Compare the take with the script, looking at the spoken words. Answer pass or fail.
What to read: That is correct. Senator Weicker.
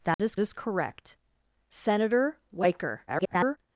fail